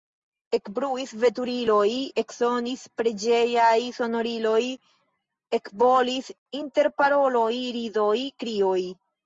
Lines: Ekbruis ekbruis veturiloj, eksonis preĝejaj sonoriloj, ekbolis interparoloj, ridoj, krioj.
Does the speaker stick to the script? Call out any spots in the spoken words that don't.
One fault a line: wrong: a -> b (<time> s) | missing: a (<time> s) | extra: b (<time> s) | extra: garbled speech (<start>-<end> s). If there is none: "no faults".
missing: ekbruis (1.1 s)